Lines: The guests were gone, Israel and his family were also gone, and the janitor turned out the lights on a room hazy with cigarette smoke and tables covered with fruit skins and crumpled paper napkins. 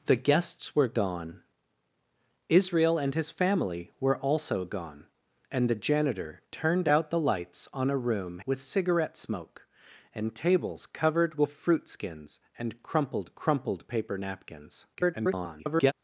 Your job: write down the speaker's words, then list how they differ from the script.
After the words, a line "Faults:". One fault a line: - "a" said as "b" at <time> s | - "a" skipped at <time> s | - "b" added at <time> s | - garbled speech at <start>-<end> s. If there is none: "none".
The guests were gone, Israel and his family were also gone, and the janitor turned out the lights on a room with cigarette smoke and tables covered with fruit skins and crumpled crumpled paper napkins. [garbled]
Faults:
- "hazy" skipped at 8.4 s
- "crumpled" added at 13.3 s
- garbled speech at 14.9-15.9 s